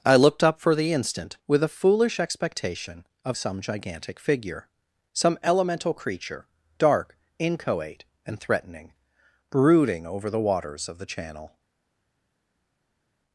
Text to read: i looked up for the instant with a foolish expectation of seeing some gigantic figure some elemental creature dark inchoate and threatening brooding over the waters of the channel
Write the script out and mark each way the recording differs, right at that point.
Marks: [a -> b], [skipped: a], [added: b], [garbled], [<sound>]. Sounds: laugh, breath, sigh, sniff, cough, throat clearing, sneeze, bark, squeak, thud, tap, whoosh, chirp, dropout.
i looked up for the instant with a foolish expectation of [skipped: seeing] some gigantic figure some elemental creature dark inchoate and threatening brooding over the waters of the channel